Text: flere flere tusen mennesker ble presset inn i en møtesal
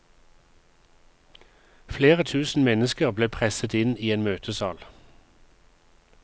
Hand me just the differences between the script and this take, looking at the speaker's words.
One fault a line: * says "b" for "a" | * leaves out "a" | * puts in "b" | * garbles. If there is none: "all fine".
* leaves out "flere"